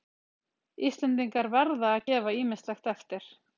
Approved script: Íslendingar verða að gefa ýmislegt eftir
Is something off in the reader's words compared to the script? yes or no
no